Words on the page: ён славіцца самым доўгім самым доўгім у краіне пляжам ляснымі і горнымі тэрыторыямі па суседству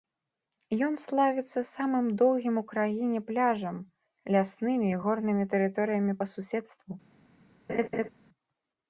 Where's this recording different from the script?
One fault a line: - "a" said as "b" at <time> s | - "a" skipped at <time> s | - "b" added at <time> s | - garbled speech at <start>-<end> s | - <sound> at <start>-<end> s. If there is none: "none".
- "самым доўгім" skipped at 2.5 s
- laugh at 7.7-8.1 s